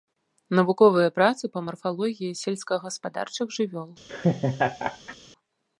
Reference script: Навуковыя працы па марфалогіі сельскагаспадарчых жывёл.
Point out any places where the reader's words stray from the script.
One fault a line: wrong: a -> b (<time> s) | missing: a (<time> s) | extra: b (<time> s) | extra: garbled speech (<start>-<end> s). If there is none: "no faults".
no faults